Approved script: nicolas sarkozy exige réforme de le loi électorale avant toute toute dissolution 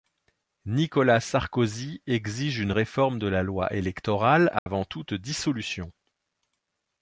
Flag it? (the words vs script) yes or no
yes